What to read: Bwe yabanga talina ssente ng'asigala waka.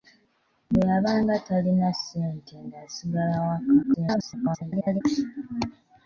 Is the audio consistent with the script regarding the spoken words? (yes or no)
no